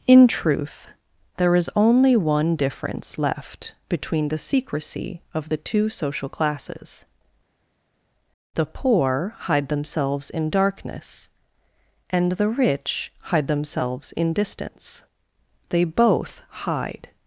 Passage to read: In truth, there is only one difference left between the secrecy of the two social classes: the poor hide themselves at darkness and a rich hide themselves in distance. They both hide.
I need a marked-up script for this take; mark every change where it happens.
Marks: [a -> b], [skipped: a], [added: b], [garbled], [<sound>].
In truth, there is only one difference left between the secrecy of the two social classes: the poor hide themselves [at -> in] darkness and [a -> the] rich hide themselves in distance. They both hide.